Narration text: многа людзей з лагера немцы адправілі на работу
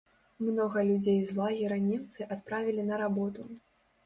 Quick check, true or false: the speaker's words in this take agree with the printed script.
true